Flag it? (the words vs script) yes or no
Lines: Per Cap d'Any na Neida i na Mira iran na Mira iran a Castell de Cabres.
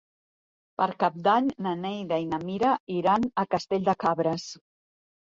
yes